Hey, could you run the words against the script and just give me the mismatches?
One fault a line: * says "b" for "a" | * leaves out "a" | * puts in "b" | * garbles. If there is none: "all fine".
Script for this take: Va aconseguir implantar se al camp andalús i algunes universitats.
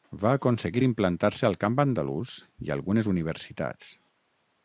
all fine